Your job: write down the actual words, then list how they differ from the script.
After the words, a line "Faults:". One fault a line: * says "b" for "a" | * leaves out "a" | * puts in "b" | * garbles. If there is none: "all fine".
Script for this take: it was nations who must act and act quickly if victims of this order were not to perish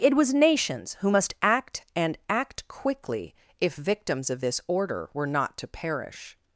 it was nations who must act and act quickly if victims of this order were not to perish
Faults:
all fine